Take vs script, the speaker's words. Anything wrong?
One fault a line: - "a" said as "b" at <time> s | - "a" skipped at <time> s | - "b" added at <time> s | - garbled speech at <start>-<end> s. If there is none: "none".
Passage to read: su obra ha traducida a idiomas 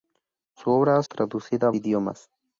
none